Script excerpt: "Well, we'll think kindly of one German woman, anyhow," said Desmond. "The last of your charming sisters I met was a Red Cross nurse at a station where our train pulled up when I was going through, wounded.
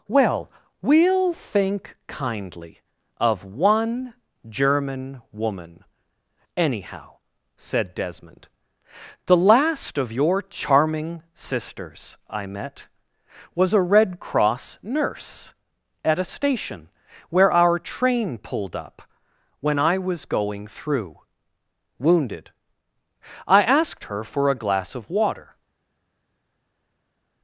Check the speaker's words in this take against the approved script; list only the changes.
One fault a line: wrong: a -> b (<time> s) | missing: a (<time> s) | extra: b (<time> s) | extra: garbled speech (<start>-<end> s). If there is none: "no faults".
extra: I asked her for a glass of water (23.5 s)